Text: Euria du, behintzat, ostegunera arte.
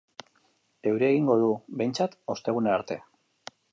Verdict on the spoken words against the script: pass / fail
fail